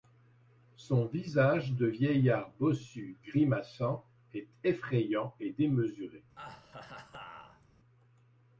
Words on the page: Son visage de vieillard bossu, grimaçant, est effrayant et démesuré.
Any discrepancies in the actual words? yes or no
no